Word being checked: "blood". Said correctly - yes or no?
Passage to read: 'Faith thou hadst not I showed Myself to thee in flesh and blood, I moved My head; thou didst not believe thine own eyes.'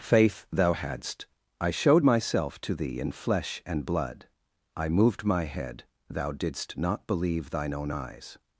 yes